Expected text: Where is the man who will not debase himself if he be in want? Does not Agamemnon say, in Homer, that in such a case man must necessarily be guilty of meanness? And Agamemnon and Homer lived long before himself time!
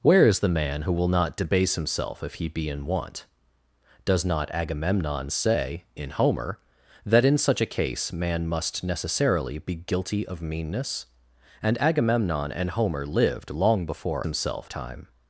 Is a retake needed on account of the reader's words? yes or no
no